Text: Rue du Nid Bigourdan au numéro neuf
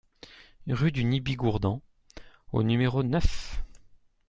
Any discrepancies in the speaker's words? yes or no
no